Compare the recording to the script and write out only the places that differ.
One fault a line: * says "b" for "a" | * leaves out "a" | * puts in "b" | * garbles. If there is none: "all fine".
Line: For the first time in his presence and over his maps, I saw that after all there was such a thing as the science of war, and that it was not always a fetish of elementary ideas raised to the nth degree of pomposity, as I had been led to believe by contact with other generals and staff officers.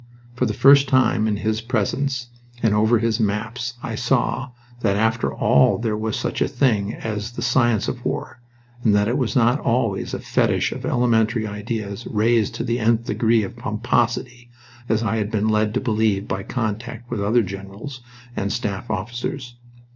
all fine